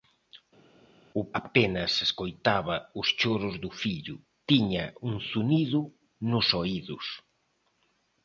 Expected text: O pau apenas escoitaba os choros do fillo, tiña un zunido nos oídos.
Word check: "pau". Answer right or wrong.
wrong